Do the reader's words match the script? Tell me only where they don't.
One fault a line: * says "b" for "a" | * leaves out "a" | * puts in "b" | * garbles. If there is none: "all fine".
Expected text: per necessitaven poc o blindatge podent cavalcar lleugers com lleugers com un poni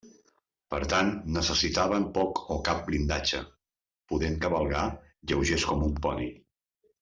* puts in "tant"
* puts in "cap"
* leaves out "lleugers com"